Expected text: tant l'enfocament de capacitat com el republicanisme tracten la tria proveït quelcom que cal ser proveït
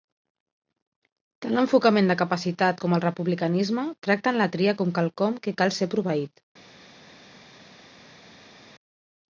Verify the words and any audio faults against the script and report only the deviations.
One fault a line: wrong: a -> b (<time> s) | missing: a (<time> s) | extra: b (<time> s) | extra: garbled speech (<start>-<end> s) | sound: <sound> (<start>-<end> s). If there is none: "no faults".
wrong: proveït -> com (4.8 s)